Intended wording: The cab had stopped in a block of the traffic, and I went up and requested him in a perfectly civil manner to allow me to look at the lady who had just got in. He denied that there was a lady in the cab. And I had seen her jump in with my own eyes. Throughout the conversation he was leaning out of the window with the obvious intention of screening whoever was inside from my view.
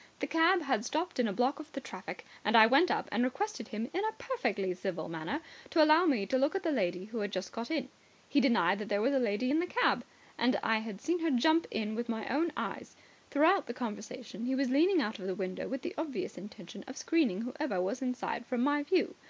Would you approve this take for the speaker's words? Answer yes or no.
yes